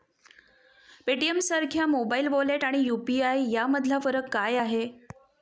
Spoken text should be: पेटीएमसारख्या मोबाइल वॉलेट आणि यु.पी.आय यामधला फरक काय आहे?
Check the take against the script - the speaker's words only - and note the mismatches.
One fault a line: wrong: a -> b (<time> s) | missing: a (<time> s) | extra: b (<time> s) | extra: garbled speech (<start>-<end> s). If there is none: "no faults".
no faults